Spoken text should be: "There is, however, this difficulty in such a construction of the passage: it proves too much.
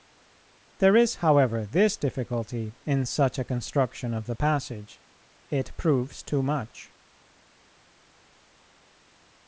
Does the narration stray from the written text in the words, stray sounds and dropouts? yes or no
no